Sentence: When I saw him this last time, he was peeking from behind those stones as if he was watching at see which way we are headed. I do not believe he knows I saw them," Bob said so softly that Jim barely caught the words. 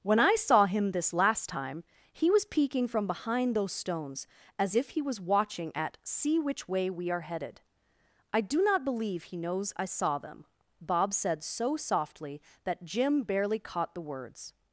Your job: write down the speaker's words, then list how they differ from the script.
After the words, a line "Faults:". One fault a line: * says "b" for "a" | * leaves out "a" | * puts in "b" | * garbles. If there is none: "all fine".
When I saw him this last time, he was peeking from behind those stones as if he was watching at see which way we are headed. I do not believe he knows I saw them," Bob said so softly that Jim barely caught the words.
Faults:
all fine